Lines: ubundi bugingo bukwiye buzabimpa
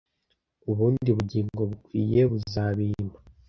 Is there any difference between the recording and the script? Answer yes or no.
no